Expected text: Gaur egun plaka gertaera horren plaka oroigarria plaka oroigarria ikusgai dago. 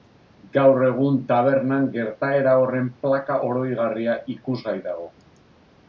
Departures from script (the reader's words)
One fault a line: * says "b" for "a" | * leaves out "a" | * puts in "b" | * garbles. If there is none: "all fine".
* says "tabernan" for "plaka"
* leaves out "plaka oroigarria"